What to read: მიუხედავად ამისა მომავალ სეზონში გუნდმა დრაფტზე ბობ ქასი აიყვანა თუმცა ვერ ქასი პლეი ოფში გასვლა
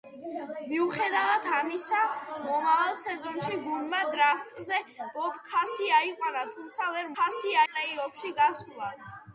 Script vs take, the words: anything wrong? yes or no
no